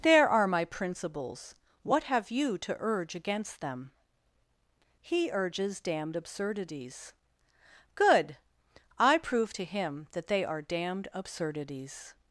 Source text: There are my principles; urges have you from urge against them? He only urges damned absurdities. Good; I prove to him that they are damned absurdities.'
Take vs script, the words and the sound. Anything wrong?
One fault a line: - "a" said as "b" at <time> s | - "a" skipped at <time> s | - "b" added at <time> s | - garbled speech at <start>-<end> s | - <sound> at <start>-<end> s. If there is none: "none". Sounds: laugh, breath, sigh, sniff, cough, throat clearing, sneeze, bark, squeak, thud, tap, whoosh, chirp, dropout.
- "urges" said as "what" at 1.8 s
- "from" said as "to" at 2.6 s
- "only" skipped at 5.3 s